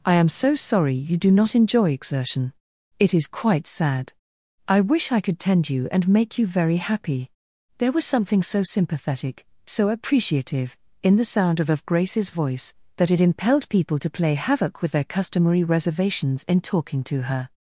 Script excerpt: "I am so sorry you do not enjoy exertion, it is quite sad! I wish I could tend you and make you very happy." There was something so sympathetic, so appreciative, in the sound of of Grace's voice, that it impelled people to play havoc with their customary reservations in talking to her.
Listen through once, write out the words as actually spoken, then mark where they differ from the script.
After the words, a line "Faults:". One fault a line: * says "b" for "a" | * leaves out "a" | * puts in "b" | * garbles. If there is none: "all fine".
"I am so sorry you do not enjoy exertion, it is quite sad! I wish I could tend you and make you very happy." There was something so sympathetic, so appreciative, in the sound of of Grace's voice, that it impelled people to play havoc with their customary reservations in talking to her.
Faults:
all fine